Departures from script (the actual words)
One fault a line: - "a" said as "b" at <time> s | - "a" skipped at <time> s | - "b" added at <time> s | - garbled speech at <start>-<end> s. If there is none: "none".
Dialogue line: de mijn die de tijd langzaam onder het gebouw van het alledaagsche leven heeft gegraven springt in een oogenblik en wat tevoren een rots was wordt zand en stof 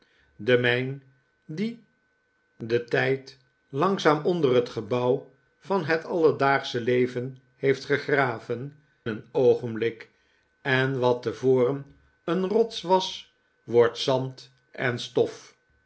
- "springt in" skipped at 8.8 s